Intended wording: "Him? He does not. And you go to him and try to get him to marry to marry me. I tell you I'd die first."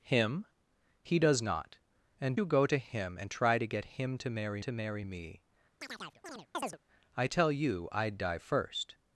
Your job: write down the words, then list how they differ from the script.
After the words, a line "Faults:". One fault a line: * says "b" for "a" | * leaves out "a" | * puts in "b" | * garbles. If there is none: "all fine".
"Him? He does not. And you go to him and try to get him to marry to marry me. I tell you I'd die first."
Faults:
all fine